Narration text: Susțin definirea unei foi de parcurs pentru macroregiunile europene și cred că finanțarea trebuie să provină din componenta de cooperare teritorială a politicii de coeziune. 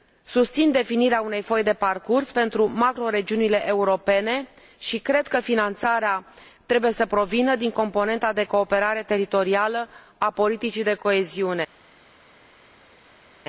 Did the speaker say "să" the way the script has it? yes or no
yes